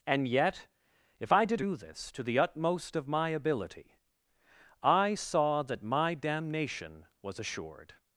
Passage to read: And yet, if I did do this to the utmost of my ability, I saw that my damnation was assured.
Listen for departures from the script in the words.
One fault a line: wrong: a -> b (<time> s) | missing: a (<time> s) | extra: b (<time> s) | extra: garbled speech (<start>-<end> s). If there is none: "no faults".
no faults